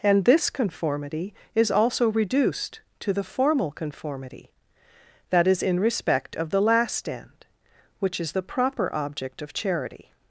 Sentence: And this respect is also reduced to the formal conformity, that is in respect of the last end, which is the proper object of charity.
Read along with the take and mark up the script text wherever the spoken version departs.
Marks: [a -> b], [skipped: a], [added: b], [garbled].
And this [respect -> conformity] is also reduced to the formal conformity, that is in respect of the last end, which is the proper object of charity.